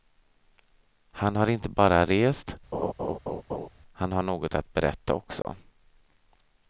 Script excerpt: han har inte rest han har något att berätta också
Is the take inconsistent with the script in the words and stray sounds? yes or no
yes